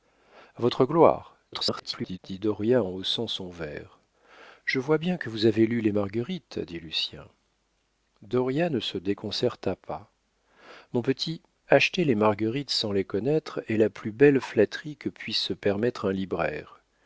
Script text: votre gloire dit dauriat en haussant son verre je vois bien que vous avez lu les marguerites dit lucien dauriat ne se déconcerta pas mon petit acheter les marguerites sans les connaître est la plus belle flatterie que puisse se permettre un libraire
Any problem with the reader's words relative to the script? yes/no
yes